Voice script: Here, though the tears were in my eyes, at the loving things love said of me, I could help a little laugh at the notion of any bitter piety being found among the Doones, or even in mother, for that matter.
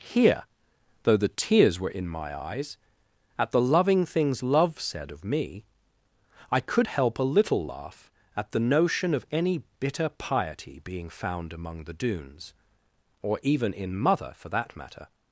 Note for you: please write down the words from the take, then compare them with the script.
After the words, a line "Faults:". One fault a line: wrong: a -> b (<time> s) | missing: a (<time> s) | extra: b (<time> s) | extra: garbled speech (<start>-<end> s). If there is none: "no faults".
Here, though the tears were in my eyes, at the loving things love said of me, I could help a little laugh at the notion of any bitter piety being found among the Doones, or even in mother, for that matter.
Faults:
no faults